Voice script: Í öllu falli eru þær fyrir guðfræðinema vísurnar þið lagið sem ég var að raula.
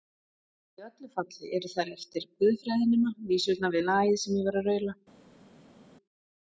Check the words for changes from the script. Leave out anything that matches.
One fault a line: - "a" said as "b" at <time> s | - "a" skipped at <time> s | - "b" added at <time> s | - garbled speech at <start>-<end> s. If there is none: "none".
- "fyrir" said as "eftir" at 2.0 s
- "þið" said as "við" at 3.8 s